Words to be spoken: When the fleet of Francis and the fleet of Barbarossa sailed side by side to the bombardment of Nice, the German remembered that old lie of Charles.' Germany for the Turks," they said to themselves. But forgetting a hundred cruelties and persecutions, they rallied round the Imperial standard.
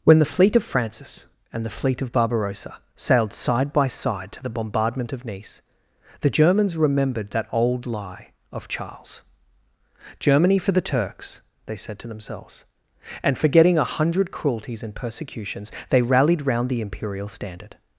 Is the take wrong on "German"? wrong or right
wrong